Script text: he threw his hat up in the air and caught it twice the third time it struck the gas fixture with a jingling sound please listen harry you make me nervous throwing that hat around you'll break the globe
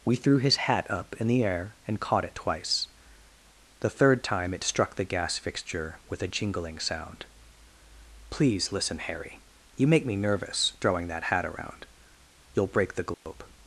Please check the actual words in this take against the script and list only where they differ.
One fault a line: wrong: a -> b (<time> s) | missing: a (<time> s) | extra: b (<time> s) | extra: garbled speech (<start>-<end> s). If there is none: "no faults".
wrong: he -> we (0.0 s)